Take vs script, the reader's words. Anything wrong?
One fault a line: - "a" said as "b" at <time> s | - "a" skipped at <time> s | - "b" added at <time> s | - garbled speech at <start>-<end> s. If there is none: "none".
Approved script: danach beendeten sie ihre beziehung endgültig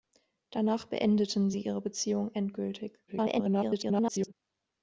- garbled speech at 3.1-4.3 s